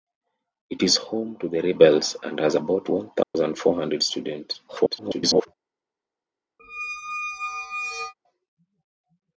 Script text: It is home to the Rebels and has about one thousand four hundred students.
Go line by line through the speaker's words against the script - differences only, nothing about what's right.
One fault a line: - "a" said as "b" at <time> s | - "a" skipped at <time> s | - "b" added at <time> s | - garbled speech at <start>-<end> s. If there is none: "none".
- garbled speech at 4.7-5.5 s